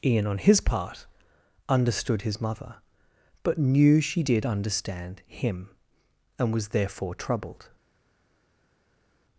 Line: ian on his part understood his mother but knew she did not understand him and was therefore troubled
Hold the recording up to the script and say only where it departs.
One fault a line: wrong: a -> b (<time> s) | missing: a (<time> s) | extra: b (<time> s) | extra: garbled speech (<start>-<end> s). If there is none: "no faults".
missing: not (4.5 s)